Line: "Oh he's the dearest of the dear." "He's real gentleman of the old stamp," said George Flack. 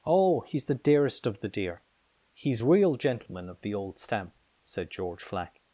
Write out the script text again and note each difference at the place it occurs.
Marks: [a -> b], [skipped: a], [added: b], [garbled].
"Oh he's the dearest of the dear." "He's real gentleman of the old stamp," said George Flack.